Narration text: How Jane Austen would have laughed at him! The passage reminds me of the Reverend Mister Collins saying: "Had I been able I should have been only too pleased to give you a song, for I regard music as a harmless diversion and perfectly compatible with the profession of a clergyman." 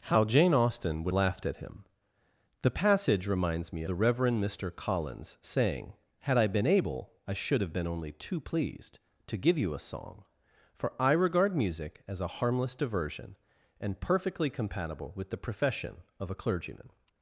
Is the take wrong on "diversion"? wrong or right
right